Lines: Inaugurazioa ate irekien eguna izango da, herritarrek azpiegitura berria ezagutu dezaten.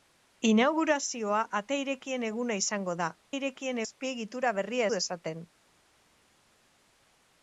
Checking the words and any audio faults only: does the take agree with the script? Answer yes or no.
no